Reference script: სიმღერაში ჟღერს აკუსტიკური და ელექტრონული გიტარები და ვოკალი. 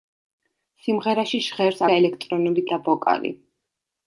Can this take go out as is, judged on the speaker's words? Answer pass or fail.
fail